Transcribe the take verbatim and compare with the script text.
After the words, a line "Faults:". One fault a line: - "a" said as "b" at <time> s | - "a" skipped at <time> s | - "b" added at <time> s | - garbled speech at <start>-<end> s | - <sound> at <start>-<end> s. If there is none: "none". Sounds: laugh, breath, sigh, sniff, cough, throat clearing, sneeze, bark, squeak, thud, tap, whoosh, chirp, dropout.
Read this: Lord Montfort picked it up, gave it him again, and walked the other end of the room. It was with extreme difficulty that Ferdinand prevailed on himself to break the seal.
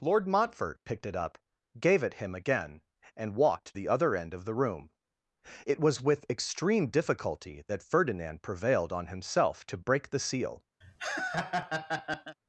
Lord Montfort picked it up, gave it him again, and walked the other end of the room. It was with extreme difficulty that Ferdinand prevailed on himself to break the seal.
Faults:
- laugh at 10.8-12.4 s